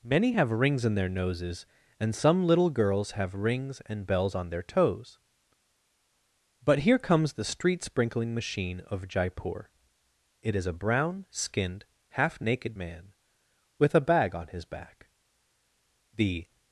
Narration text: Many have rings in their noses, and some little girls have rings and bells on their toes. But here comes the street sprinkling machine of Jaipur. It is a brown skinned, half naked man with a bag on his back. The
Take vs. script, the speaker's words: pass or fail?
pass